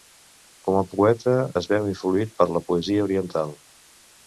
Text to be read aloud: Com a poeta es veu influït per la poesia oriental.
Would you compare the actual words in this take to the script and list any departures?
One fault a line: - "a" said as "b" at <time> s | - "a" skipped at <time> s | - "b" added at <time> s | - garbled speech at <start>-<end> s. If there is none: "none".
none